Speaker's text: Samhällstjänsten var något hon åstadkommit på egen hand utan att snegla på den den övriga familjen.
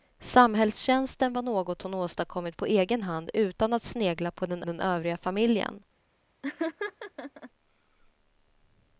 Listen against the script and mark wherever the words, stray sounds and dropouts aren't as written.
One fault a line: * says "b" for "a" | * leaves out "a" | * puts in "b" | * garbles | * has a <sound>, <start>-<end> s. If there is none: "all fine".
* has a laugh, 6.4-7.5 s